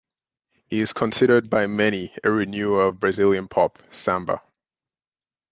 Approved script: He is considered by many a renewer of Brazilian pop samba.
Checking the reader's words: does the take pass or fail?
pass